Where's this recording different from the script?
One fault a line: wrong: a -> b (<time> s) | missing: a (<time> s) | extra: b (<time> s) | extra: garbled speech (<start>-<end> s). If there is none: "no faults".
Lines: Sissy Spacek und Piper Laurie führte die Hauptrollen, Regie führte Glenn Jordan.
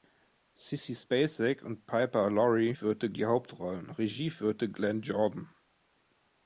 no faults